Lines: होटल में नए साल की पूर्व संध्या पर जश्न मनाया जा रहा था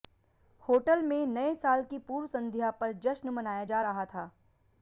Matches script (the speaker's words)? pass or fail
pass